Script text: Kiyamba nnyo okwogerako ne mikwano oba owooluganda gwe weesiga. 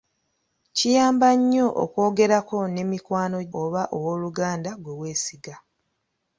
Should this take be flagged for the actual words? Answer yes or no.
no